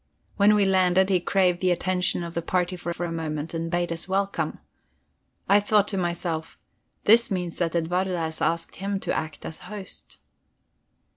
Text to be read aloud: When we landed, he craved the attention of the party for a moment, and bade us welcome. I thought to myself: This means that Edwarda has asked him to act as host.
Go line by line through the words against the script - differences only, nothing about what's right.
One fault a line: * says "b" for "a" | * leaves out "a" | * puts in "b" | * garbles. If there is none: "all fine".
* puts in "for"